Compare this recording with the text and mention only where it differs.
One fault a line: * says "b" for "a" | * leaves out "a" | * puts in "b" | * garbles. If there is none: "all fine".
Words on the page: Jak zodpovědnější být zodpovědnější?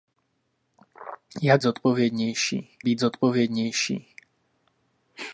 all fine